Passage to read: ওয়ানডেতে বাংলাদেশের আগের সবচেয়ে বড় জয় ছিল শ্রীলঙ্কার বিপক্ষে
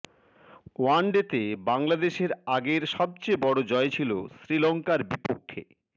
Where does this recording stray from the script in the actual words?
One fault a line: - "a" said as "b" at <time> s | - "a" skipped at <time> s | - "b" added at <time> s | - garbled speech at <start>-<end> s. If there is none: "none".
none